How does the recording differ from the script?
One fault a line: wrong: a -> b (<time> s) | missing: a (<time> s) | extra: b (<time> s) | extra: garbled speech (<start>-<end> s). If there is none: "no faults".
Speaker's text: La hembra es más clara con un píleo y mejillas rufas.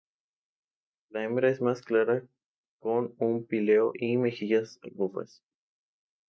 no faults